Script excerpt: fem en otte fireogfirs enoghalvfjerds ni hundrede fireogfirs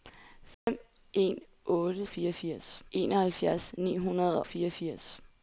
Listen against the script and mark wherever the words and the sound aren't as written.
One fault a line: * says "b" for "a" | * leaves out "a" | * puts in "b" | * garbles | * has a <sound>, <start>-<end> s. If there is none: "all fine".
* has a dropout, 0.5-0.7 s